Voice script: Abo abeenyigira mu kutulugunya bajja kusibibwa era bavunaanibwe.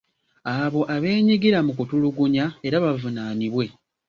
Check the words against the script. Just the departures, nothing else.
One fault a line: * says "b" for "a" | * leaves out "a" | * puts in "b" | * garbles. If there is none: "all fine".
* leaves out "bajja kusibibwa"